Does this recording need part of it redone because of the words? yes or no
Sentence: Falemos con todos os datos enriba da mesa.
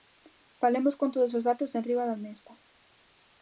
no